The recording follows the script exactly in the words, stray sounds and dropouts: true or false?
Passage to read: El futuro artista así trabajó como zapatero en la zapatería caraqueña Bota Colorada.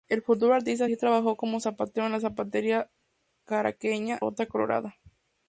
true